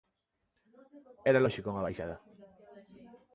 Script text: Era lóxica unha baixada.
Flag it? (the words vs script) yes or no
no